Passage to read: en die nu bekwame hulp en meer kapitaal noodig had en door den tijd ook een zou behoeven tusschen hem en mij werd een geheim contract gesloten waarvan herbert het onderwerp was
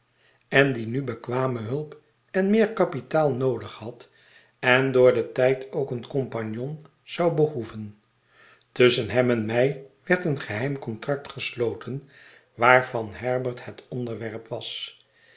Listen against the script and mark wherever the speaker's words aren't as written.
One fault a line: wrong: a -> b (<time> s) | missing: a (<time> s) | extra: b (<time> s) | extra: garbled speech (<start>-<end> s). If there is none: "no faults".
extra: compagnon (6.1 s)